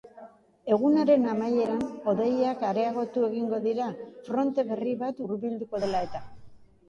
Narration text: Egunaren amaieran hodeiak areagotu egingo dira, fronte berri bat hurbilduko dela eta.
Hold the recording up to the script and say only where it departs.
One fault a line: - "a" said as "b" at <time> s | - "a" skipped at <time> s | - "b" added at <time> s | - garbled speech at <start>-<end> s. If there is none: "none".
none